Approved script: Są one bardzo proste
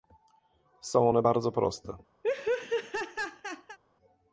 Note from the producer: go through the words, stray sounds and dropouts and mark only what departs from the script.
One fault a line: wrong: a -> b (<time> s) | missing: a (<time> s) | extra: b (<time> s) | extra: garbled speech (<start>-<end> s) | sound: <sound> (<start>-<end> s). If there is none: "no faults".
sound: laugh (2.2-3.8 s)